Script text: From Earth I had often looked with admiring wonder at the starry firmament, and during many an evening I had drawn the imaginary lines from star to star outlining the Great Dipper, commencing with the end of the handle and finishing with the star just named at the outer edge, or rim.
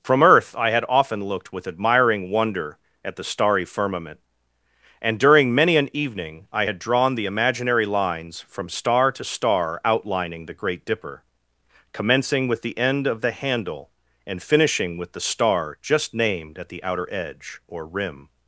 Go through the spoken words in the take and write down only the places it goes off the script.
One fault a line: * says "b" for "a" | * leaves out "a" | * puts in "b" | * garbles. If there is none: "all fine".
all fine